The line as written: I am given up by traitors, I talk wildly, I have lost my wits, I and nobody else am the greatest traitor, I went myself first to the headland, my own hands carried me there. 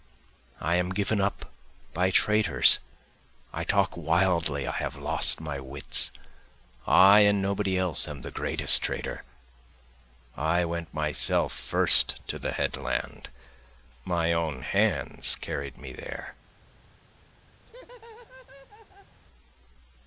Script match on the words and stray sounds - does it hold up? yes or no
no